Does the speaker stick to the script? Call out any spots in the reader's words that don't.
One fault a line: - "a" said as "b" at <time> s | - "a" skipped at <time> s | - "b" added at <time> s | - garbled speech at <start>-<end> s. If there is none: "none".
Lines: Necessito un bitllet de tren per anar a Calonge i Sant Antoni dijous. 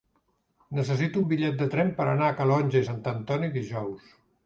none